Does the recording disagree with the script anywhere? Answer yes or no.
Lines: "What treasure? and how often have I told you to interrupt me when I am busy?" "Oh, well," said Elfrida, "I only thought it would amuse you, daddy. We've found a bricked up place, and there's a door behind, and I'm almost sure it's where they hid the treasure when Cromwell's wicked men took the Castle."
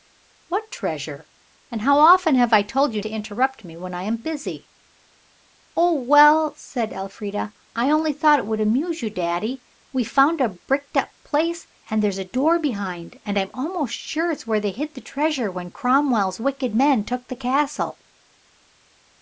no